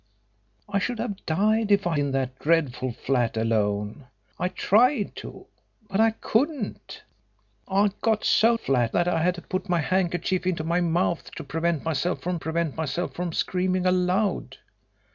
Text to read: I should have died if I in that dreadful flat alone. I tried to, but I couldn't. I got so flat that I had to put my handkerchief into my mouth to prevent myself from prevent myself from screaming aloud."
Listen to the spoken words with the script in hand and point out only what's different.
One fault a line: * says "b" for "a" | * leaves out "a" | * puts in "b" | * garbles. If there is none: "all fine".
all fine